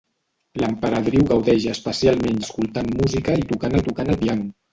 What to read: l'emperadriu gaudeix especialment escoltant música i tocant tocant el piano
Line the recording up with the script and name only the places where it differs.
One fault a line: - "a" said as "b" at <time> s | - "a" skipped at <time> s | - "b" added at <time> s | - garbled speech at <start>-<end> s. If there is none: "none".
none